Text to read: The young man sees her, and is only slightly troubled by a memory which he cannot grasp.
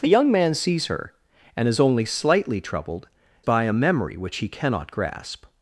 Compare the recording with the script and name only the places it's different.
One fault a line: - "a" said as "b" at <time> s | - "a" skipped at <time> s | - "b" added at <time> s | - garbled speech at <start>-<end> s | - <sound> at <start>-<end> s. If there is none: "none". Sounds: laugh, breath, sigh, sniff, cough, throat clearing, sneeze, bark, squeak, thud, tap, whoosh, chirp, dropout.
none